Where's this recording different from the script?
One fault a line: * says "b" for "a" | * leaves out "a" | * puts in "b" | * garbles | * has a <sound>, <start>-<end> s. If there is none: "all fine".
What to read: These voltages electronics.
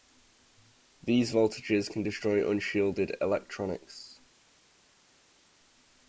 * puts in "can destroy unshielded"